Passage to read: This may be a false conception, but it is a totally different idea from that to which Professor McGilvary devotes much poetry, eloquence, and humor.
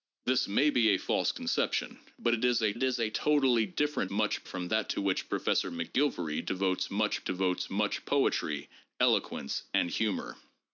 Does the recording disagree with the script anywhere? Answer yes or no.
yes